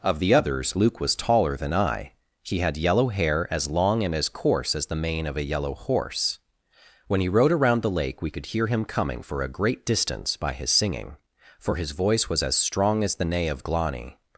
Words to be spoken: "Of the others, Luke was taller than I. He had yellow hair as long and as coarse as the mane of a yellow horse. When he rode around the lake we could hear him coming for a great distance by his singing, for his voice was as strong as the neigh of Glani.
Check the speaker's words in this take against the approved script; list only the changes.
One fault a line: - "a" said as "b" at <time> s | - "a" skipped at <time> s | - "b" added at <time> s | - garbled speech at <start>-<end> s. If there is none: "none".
none